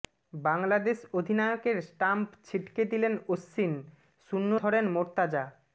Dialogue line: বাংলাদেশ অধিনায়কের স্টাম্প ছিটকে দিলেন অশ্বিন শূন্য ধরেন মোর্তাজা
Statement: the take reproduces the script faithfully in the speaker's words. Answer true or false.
true